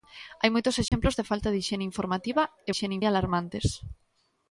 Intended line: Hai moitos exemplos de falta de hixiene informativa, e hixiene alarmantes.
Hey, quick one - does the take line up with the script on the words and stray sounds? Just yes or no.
no